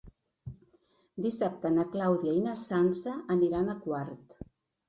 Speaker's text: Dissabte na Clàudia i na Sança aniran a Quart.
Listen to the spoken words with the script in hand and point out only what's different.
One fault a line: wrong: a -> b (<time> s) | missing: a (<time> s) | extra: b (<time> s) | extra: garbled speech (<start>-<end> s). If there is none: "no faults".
no faults